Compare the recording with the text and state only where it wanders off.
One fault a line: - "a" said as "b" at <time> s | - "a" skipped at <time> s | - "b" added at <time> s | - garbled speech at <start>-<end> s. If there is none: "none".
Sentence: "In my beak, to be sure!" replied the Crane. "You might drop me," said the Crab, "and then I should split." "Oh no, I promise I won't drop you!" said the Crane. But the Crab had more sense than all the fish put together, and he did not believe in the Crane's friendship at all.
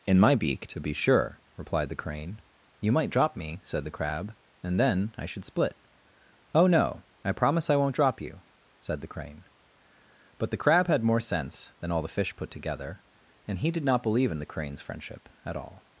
none